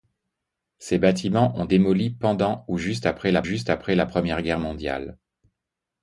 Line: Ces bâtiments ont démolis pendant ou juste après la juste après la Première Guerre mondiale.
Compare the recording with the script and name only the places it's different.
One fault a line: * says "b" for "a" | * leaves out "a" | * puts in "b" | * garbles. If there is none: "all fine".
all fine